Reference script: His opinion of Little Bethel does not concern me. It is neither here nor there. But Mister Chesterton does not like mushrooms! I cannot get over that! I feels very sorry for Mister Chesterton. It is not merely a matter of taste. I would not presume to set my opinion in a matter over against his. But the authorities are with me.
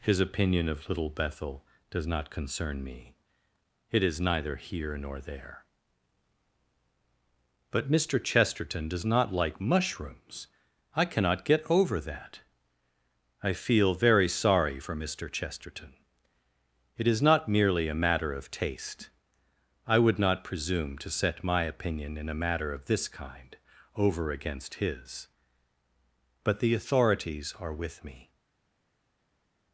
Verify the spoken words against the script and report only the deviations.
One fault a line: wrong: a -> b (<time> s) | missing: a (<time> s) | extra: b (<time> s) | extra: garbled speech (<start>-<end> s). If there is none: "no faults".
wrong: feels -> feel (13.5 s)
extra: of this kind (22.7 s)